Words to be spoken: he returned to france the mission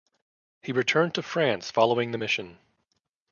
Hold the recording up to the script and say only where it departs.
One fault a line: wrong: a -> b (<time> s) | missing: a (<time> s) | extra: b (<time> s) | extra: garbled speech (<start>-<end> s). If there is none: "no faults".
extra: following (1.7 s)